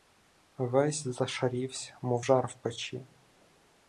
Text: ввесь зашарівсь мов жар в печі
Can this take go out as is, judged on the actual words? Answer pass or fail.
pass